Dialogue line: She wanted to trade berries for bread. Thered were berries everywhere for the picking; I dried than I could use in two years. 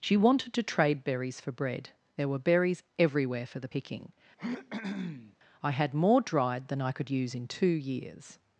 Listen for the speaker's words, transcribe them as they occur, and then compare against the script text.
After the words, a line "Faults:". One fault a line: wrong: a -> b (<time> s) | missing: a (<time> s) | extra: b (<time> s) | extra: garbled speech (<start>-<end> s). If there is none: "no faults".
She wanted to trade berries for bread. There were berries everywhere for the picking; I had more dried than I could use in two years.
Faults:
wrong: Thered -> There (2.2 s)
extra: had more (5.7 s)